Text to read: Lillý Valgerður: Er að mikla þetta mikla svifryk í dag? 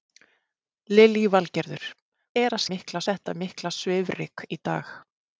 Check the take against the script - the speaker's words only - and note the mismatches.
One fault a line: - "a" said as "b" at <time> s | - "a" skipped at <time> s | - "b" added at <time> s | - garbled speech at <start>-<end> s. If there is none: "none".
none